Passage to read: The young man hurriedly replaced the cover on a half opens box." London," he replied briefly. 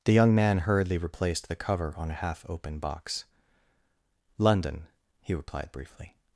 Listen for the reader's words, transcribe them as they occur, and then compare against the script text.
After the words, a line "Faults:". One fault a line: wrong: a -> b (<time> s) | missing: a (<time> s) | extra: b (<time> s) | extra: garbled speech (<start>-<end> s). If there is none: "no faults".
The young man hurriedly replaced the cover on a half open box." London," he replied briefly.
Faults:
wrong: opens -> open (2.5 s)